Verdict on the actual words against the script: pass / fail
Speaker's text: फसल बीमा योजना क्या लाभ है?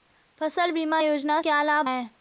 pass